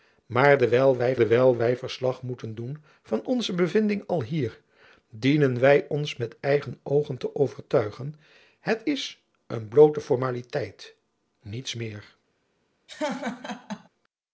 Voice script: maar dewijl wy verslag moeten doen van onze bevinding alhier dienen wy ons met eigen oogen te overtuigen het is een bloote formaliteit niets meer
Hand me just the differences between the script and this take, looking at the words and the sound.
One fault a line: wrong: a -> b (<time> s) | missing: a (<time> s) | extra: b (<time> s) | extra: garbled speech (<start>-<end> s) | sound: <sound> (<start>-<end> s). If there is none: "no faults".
extra: dewijl wy (1.1 s)
sound: laugh (12.9-13.9 s)